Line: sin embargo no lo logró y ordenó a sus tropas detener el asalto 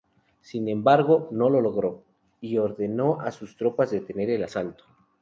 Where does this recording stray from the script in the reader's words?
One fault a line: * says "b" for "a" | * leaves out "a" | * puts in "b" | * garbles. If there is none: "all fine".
all fine